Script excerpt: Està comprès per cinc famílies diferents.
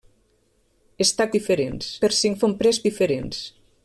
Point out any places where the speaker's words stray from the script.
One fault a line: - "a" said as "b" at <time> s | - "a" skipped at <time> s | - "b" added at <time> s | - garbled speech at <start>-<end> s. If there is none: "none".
- "comprès" said as "diferents" at 1.4 s
- "famílies" said as "comprès" at 2.4 s